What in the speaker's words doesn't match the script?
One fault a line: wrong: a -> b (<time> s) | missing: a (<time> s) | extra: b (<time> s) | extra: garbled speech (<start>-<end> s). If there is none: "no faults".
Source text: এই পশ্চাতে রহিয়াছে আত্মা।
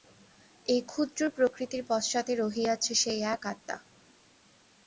extra: ক্ষুদ্র প্রকৃতির (0.8 s)
extra: সেই এক (3.0 s)